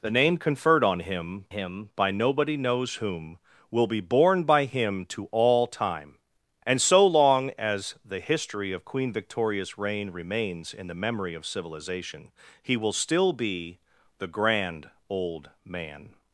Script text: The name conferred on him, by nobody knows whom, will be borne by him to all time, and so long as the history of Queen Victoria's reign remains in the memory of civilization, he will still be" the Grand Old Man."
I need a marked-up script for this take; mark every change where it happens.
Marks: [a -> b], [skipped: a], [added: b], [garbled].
The name conferred on him, [added: him] by nobody knows whom, will be borne by him to all time, and so long as the history of Queen Victoria's reign remains in the memory of civilization, he will still be" the Grand Old Man."